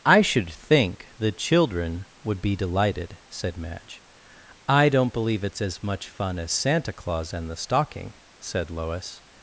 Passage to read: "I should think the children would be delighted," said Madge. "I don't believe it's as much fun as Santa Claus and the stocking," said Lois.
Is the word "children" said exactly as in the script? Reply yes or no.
yes